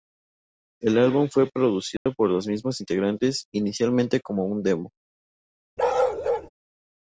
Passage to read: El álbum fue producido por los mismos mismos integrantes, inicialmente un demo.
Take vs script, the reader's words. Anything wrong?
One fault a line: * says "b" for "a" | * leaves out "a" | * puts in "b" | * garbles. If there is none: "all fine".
* leaves out "mismos"
* puts in "como"